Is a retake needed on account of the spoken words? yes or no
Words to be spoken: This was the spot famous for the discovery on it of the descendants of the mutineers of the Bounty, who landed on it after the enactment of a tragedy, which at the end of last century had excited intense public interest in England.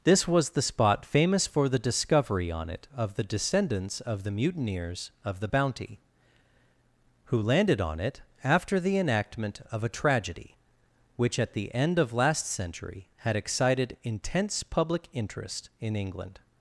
no